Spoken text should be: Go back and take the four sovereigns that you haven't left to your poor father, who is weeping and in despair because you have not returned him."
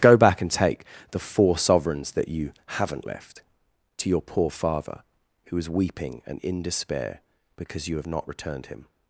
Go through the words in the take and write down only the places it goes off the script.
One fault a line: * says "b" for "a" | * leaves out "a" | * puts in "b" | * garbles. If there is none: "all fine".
all fine